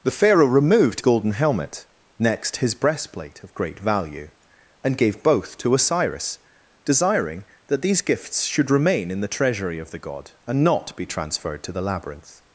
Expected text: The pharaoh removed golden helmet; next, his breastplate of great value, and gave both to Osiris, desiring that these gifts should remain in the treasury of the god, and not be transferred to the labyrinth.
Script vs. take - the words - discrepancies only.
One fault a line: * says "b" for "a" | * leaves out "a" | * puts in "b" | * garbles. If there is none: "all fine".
all fine